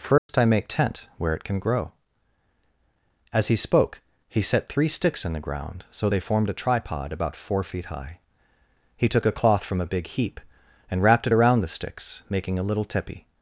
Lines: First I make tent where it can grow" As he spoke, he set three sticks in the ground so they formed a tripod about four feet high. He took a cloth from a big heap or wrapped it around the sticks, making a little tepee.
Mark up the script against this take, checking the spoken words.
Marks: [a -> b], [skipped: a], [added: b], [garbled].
First I make tent where it can grow" As he spoke, he set three sticks in the ground so they formed a tripod about four feet high. He took a cloth from a big heap [or -> and] wrapped it around the sticks, making a little tepee.